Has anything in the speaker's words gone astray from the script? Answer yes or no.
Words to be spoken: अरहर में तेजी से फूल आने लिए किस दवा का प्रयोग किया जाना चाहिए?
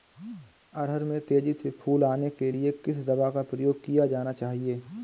yes